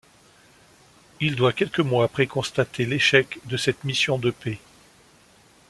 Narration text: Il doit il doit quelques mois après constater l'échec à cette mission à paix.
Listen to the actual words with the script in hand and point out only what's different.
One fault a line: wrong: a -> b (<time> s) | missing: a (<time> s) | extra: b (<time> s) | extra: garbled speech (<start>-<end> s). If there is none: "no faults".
missing: il doit (1.5 s)
wrong: à -> de (3.4 s)
wrong: à -> de (4.2 s)